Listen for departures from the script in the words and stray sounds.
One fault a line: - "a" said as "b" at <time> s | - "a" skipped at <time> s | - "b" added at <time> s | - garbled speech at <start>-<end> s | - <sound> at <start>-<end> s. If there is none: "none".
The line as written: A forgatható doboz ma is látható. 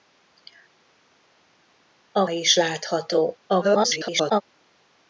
- "forgatható doboz ma" skipped at 2.3 s
- garbled speech at 3.5-4.4 s